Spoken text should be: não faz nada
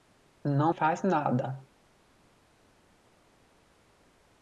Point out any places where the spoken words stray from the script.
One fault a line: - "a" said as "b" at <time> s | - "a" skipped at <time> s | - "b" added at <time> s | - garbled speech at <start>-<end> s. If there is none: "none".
none